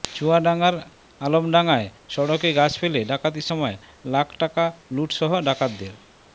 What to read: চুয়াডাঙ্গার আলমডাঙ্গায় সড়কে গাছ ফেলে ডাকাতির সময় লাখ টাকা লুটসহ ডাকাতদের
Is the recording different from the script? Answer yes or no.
no